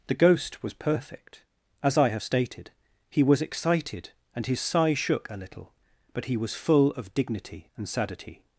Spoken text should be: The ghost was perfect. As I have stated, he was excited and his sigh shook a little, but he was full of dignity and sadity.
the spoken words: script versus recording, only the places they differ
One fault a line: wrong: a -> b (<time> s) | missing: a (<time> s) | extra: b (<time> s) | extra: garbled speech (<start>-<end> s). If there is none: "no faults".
no faults